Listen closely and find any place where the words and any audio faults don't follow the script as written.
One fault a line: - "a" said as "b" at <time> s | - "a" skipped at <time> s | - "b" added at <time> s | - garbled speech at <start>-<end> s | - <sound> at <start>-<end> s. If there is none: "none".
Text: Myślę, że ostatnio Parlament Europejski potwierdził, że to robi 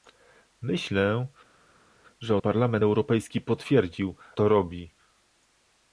- "ostatnio" skipped at 2.4 s
- "że" skipped at 4.2 s